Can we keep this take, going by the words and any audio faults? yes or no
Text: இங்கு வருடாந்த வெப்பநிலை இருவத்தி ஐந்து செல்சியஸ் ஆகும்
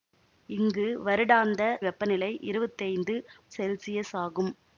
yes